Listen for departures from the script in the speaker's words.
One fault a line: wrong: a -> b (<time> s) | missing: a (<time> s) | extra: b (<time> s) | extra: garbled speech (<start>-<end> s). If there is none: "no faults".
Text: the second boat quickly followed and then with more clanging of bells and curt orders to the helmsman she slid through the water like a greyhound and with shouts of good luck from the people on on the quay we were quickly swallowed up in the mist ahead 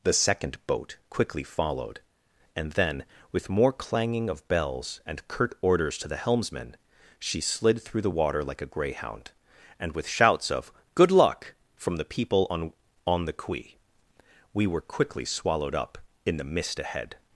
no faults